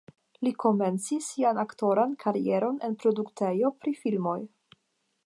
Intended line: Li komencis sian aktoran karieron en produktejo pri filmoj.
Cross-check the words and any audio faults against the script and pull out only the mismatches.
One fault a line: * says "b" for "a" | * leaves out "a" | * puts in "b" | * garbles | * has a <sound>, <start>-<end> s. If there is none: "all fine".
all fine